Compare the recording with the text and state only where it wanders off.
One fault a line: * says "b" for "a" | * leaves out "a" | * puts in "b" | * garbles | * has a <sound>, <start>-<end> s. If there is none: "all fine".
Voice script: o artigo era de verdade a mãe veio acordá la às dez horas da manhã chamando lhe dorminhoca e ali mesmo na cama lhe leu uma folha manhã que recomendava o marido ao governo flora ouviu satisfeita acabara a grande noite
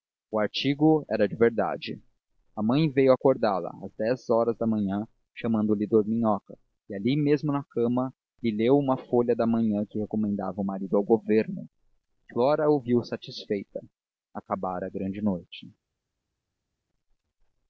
* puts in "da"